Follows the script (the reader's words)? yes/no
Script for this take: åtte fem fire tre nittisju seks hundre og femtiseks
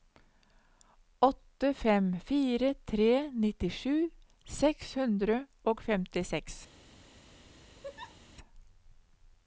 yes